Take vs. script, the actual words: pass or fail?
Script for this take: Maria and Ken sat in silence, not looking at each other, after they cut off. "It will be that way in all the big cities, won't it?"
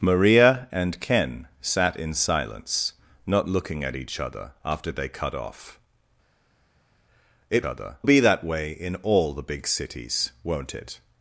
fail